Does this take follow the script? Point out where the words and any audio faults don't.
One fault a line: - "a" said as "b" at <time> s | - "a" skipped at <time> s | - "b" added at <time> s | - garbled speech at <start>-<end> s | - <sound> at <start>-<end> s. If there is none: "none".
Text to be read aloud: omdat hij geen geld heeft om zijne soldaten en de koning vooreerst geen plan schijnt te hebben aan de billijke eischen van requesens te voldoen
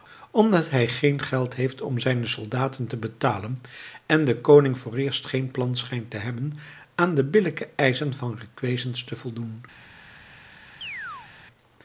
- "te betalen" added at 2.9 s
- chirp at 10.8-11.3 s